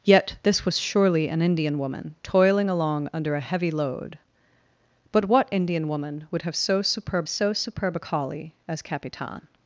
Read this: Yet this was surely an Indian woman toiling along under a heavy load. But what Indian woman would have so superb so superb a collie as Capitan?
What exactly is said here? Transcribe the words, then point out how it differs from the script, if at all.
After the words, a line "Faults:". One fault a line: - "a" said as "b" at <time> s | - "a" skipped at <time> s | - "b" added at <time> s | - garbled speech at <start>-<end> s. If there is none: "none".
Yet this was surely an Indian woman toiling along under a heavy load. But what Indian woman would have so superb so superb a collie as Capitan?
Faults:
none